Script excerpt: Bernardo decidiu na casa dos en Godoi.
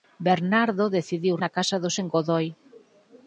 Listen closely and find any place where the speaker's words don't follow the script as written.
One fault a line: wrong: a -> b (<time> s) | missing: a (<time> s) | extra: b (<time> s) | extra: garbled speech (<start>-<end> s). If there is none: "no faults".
no faults